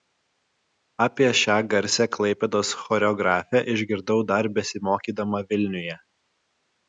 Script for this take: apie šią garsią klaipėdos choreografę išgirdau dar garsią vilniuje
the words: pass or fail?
fail